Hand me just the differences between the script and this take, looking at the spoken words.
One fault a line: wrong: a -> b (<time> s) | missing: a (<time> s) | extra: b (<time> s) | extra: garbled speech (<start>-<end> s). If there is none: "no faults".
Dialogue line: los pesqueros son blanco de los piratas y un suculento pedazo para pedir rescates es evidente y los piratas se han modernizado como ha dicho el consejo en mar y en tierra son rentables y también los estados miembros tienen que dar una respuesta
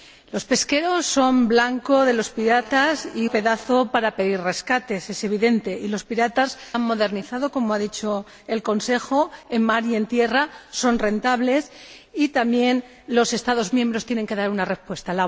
missing: un suculento (3.3 s)
missing: se (6.6 s)